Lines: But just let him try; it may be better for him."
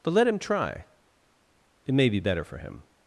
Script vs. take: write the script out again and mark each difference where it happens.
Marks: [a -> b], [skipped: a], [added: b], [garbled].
But [skipped: just] let him try; it may be better for him."